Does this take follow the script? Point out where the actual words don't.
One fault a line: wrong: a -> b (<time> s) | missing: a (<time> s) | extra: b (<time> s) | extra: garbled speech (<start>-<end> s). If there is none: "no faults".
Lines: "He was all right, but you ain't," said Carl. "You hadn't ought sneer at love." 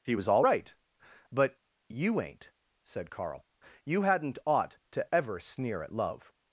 extra: to ever (4.9 s)